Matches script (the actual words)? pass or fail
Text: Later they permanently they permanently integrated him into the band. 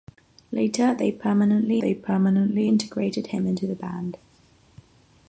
pass